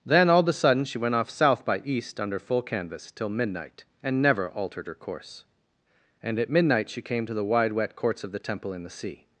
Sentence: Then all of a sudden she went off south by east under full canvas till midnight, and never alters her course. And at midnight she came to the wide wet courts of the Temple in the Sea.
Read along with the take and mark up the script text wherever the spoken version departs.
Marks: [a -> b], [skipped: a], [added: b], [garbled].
Then all of a sudden she went off south by east under full canvas till midnight, and never [alters -> altered] her course. And at midnight she came to the wide wet courts of the Temple in the Sea.